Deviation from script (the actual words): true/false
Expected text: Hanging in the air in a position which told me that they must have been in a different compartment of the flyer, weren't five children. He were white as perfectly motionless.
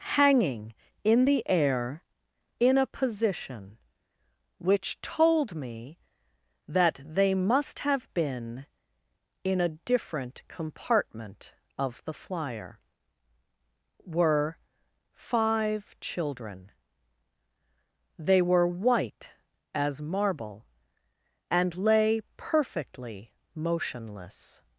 true